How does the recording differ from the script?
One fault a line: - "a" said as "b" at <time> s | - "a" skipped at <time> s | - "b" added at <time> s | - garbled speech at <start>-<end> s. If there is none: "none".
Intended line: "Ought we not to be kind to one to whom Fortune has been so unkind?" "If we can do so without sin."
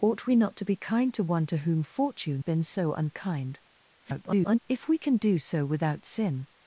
- "has" skipped at 2.4 s
- garbled speech at 4.0-4.6 s